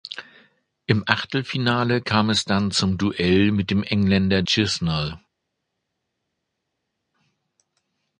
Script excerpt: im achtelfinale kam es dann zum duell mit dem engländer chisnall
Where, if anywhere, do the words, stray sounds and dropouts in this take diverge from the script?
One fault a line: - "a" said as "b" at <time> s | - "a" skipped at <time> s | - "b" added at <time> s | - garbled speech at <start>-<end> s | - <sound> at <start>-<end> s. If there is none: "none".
none